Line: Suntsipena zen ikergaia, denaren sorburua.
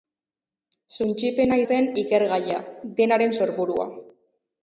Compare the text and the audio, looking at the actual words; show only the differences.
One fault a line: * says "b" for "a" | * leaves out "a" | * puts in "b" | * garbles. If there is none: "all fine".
all fine